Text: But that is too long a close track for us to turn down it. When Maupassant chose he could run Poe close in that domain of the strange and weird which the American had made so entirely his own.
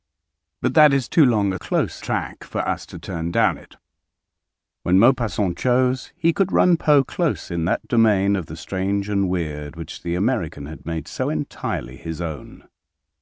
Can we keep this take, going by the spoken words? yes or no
yes